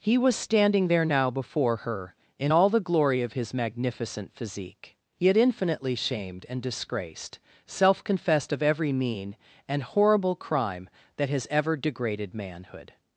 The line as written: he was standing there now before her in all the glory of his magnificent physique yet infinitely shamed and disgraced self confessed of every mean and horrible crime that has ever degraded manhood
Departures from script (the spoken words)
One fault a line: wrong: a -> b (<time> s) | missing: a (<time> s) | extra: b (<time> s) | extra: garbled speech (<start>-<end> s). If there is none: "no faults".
no faults